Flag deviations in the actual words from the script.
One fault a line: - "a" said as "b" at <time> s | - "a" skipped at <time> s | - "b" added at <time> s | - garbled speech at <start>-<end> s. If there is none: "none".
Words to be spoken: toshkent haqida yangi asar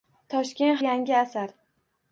- "haqida" skipped at 0.8 s